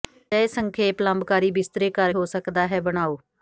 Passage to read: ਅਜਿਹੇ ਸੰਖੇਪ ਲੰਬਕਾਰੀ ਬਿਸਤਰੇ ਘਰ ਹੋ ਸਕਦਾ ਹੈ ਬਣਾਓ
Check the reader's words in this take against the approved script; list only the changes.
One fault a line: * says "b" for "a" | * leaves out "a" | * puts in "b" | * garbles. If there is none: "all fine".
all fine